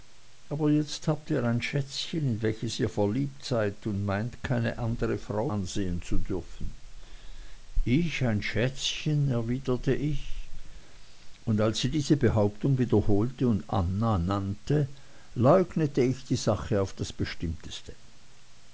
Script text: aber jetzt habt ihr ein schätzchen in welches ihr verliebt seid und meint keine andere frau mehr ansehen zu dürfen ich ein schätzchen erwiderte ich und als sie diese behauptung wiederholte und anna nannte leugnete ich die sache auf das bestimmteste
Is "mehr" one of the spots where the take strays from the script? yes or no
yes